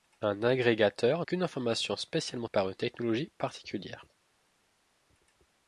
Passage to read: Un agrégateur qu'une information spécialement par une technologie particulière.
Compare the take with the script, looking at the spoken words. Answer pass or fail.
pass